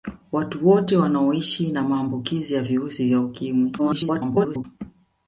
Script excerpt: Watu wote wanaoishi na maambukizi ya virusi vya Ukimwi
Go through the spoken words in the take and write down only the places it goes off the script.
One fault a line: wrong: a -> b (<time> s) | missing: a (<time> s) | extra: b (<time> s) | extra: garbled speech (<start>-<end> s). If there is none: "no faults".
extra: garbled speech (3.8-4.6 s)